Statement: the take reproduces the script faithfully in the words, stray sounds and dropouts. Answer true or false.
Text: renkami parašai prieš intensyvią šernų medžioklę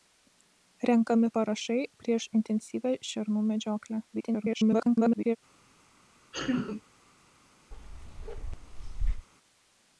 false